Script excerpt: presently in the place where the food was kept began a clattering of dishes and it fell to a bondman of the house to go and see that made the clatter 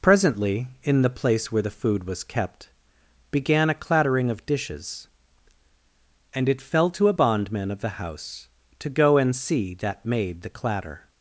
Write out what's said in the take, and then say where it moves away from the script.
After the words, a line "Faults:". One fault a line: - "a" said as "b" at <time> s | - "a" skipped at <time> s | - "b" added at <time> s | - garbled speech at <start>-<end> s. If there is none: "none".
presently in the place where the food was kept began a clattering of dishes and it fell to a bondman of the house to go and see that made the clatter
Faults:
none